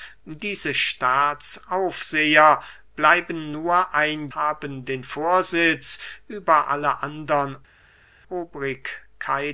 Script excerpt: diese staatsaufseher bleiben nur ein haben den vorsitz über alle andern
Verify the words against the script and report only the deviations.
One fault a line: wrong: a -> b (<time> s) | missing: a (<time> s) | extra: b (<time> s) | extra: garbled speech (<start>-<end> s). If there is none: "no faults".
no faults